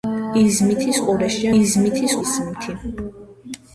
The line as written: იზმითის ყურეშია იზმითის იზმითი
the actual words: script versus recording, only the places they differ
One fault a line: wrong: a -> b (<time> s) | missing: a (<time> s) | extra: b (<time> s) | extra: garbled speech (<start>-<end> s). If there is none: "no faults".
no faults